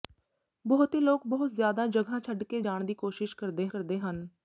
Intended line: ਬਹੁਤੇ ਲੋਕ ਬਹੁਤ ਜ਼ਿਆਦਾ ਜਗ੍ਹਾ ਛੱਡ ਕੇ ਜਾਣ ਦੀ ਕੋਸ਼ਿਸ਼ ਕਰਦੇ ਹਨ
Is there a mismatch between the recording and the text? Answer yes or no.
yes